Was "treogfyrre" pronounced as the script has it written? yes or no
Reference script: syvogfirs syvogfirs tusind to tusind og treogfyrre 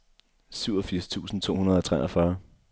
yes